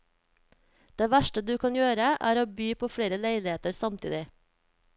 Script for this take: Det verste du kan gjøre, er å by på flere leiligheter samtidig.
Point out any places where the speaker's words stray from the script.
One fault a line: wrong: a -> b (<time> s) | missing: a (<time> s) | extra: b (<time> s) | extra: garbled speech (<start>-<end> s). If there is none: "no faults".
no faults